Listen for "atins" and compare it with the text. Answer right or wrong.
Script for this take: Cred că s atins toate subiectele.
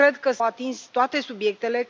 right